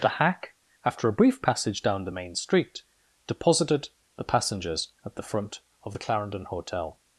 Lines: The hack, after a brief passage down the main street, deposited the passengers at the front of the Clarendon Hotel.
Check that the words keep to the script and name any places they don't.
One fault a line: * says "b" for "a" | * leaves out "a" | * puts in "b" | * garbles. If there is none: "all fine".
all fine